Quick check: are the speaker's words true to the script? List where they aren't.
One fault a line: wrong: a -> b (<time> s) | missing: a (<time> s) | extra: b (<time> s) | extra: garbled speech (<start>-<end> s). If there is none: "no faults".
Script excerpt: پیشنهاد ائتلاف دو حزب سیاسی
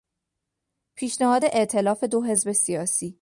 no faults